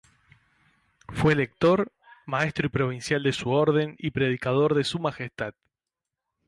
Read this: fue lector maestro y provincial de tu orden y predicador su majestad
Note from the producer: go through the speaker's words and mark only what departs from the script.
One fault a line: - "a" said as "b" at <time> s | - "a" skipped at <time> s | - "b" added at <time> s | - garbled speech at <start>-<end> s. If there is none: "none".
- "tu" said as "su" at 3.3 s
- "de" added at 4.7 s